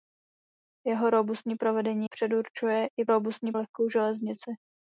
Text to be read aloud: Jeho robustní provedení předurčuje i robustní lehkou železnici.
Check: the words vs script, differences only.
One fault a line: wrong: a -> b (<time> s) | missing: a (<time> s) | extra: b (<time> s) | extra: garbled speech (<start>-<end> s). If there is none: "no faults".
no faults